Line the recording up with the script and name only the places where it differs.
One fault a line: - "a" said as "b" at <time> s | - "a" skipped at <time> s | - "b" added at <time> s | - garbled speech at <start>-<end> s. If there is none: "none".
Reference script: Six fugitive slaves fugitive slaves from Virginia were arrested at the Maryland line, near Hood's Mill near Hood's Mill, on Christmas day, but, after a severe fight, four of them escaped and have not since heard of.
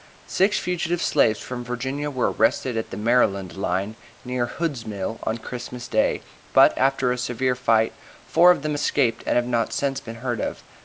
- "fugitive slaves" skipped at 1.4 s
- "near Hood's Mill" skipped at 5.2 s
- "been" added at 10.0 s